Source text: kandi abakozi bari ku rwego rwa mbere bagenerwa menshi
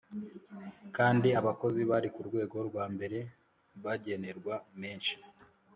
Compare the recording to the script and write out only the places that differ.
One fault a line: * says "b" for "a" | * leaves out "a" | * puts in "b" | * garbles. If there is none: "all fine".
all fine